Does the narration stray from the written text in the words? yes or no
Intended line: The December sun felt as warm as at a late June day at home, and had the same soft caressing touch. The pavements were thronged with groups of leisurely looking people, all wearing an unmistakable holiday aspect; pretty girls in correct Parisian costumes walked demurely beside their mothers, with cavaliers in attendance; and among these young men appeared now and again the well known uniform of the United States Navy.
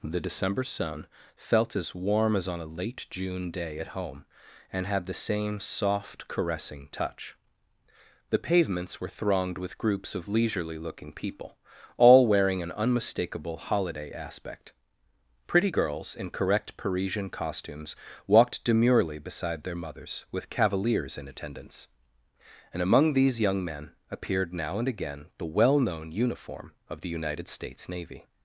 yes